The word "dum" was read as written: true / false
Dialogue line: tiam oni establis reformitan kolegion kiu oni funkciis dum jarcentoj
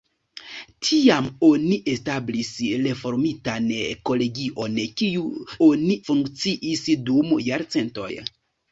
true